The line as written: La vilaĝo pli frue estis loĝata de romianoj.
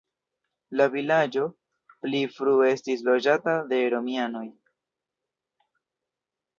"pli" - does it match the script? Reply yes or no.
yes